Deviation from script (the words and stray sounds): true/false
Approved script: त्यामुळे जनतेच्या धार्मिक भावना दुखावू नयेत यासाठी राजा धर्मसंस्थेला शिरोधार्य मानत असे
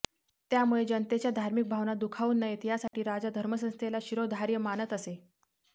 true